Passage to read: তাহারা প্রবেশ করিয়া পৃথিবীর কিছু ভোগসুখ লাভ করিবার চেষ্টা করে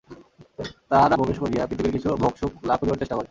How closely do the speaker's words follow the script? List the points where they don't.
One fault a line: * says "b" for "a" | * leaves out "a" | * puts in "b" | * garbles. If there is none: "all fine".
all fine